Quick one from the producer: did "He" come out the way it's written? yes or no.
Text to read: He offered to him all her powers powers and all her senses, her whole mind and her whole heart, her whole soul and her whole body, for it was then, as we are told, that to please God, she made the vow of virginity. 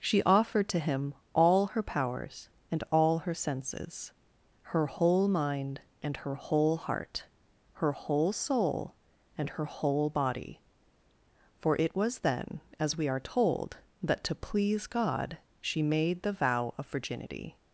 no